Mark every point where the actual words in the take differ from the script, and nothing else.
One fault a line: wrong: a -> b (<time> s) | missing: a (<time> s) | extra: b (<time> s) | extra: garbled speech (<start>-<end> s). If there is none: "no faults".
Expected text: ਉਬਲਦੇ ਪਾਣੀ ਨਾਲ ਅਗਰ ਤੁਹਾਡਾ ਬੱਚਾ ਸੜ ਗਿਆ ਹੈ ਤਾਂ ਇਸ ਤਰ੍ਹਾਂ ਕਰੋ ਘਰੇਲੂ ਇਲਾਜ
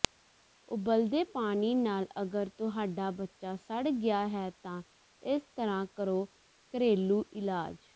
no faults